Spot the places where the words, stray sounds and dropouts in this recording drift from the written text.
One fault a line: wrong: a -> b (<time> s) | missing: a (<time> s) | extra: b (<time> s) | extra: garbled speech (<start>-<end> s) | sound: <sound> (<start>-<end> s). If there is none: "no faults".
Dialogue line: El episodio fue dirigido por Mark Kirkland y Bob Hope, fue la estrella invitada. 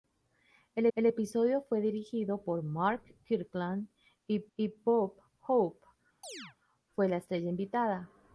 extra: el (0.9 s)
extra: y (4.6 s)
sound: chirp (6.2-6.6 s)